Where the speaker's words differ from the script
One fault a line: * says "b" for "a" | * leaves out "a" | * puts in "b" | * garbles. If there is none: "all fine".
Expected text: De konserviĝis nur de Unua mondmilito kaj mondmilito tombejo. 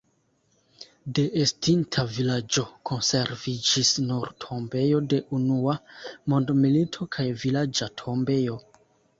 * puts in "estinta vilaĝo"
* puts in "tombejo"
* says "vilaĝa" for "mondmilito"